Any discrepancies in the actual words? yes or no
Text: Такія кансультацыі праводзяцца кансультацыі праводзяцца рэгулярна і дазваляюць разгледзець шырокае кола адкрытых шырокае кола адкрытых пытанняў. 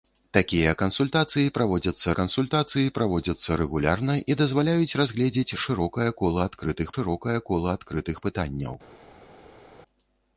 no